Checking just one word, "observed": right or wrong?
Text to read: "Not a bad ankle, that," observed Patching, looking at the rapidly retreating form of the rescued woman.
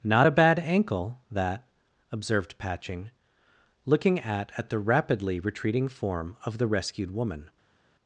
right